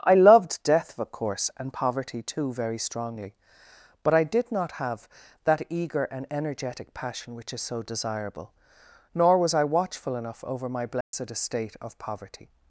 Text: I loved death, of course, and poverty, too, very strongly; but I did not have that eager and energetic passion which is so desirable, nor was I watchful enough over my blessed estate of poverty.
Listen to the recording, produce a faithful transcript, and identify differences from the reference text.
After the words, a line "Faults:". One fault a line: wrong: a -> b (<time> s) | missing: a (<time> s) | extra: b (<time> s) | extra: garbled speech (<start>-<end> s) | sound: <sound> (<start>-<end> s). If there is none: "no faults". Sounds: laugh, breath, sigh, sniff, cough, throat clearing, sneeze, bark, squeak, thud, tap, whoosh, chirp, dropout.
I loved death, of course, and poverty, too, very strongly; but I did not have that eager and energetic passion which is so desirable, nor was I watchful enough over my blessed estate of poverty.
Faults:
sound: dropout (11.0-11.1 s)